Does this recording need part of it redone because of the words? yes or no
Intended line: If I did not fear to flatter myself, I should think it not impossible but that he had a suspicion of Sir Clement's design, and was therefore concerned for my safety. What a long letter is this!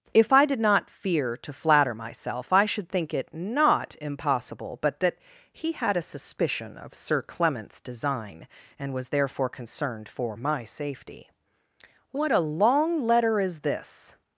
no